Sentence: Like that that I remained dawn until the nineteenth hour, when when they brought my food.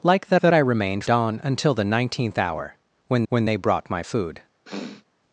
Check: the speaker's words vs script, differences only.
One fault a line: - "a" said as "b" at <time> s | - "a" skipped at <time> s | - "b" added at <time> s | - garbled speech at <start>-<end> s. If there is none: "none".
none